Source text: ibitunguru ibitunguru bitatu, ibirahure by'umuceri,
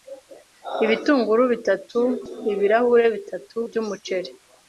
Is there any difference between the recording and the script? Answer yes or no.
yes